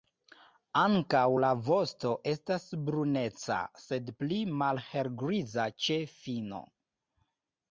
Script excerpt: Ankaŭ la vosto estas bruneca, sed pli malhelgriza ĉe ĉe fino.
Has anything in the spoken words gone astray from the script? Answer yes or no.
yes